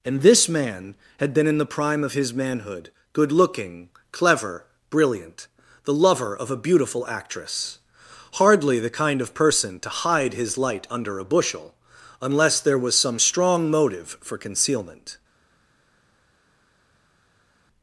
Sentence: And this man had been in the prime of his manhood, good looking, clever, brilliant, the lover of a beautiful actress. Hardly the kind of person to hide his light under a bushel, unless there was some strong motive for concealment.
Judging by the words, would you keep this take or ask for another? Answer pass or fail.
pass